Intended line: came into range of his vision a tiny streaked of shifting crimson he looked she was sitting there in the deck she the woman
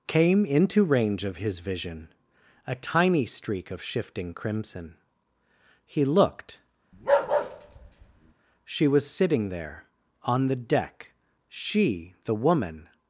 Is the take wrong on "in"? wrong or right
wrong